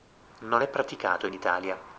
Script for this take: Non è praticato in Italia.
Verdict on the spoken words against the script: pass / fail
pass